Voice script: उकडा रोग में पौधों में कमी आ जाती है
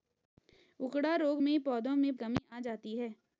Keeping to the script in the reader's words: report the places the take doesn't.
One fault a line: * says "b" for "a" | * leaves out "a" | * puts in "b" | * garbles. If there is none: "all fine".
all fine